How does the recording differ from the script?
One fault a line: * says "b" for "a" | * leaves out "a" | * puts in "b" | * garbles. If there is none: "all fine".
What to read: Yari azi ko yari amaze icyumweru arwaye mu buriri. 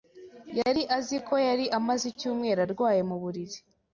all fine